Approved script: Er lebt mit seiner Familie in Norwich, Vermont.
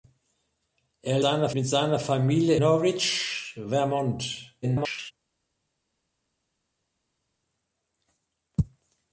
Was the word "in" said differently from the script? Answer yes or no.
yes